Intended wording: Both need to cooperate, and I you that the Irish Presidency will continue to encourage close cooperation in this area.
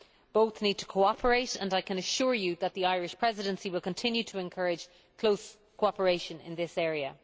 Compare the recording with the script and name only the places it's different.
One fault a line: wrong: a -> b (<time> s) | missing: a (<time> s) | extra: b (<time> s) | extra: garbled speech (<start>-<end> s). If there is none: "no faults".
extra: can assure (1.8 s)